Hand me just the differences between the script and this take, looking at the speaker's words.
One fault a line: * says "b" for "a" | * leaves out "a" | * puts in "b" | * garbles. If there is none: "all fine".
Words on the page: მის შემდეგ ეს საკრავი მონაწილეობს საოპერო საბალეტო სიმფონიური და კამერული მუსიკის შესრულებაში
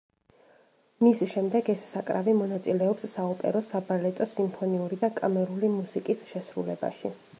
all fine